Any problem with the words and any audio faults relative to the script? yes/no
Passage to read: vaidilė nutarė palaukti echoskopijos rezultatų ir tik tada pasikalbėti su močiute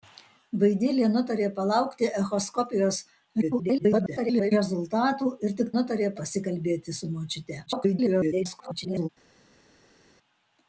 yes